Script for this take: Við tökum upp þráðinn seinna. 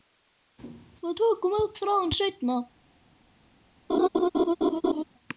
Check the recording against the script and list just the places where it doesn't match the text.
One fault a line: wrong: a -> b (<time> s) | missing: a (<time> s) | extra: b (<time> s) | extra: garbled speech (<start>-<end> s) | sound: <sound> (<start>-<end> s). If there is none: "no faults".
sound: laugh (3.9-5.0 s)